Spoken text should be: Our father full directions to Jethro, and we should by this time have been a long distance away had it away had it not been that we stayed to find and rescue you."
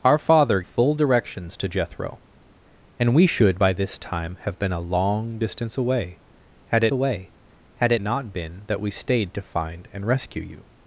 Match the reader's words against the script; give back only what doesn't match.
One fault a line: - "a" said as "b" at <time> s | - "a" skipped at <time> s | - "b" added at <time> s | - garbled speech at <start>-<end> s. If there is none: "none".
none